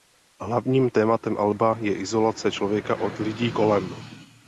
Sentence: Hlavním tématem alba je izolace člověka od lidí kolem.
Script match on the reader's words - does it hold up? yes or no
yes